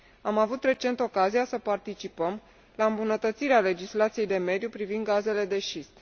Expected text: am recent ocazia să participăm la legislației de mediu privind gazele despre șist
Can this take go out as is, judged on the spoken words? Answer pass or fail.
fail